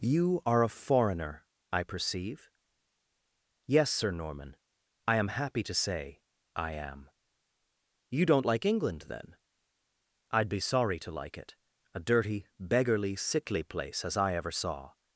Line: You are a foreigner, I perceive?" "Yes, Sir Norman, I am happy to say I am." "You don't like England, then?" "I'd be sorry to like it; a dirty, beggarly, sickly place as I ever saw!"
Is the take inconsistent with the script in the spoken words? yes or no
no